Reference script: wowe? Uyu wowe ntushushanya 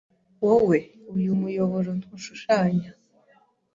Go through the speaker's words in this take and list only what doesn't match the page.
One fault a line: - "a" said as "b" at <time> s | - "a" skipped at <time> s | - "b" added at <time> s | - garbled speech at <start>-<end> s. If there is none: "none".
- "wowe" said as "muyoboro" at 1.4 s